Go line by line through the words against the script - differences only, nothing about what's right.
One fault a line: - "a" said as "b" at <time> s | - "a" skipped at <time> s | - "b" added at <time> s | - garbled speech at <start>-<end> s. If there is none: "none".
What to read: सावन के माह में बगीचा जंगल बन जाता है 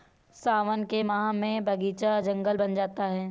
none